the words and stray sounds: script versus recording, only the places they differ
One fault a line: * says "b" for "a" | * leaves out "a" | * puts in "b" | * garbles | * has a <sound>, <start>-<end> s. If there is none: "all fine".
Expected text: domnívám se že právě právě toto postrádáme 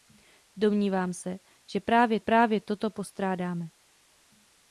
all fine